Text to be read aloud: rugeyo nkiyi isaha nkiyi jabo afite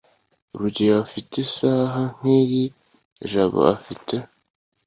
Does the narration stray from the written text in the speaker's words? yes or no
yes